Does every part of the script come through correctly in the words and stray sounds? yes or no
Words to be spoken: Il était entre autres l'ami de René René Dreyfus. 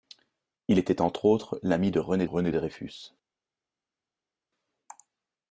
yes